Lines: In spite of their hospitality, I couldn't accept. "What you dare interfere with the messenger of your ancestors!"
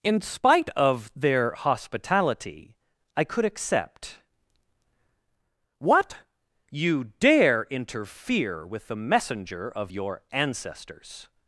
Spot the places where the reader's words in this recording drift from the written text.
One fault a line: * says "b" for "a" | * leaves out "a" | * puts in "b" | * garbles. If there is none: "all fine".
* says "could" for "couldn't"